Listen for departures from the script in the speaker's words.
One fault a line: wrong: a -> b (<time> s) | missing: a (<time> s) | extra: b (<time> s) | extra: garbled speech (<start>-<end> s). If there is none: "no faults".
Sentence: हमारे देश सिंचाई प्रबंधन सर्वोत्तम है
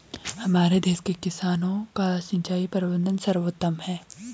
extra: के किसानों का (1.0 s)